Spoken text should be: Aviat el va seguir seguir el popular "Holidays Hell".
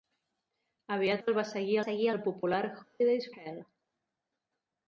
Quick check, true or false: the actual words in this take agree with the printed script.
true